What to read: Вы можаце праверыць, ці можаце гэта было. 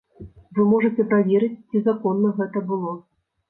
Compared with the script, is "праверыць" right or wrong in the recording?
right